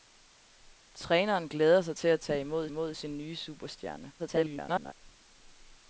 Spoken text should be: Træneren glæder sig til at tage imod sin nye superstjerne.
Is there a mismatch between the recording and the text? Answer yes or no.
yes